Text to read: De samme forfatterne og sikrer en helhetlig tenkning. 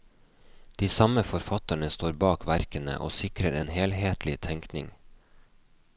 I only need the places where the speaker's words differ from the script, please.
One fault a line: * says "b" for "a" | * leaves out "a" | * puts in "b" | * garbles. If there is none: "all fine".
* puts in "står bak verkene"